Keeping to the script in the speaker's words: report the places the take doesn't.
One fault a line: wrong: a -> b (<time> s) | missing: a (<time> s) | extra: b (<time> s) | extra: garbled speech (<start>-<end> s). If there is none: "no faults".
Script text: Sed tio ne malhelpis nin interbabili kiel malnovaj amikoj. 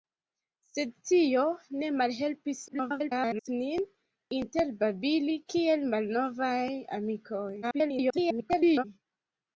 extra: garbled speech (2.7-3.5 s)
extra: garbled speech (7.6-8.8 s)